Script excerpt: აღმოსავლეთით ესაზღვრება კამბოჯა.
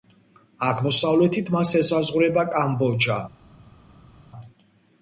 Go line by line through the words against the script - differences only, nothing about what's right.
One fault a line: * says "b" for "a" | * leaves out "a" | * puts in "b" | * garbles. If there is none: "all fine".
* puts in "მას"